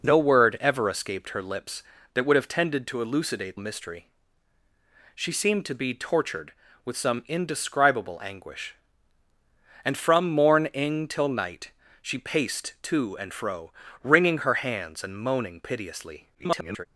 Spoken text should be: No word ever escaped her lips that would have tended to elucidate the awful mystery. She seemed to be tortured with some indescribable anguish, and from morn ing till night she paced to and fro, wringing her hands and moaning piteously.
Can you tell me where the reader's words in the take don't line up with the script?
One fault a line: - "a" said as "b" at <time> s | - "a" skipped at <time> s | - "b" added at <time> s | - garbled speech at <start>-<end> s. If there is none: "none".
- "the awful" skipped at 3.6 s
- garbled speech at 16.3-16.9 s